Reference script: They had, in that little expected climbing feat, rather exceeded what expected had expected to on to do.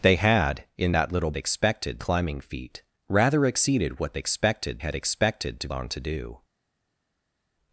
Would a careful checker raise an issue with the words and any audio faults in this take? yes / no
no